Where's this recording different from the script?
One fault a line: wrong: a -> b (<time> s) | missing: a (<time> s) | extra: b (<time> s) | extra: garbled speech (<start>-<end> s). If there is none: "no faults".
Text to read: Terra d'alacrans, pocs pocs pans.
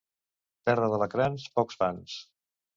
missing: pocs (1.8 s)